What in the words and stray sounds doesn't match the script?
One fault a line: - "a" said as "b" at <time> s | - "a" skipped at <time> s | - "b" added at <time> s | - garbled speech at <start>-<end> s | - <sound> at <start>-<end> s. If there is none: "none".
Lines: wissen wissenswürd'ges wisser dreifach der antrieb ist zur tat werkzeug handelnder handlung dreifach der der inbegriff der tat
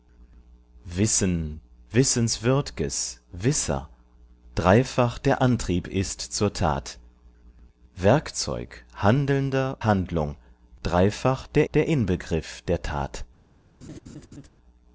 - laugh at 13.8-14.5 s